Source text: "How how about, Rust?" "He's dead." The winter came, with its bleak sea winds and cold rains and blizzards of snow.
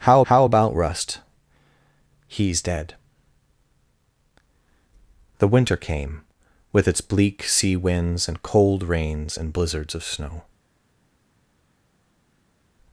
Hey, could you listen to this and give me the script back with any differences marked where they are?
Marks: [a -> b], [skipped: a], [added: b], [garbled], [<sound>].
"How how about, Rust?" "He's dead." The winter came, with its bleak sea winds and cold rains and blizzards of snow.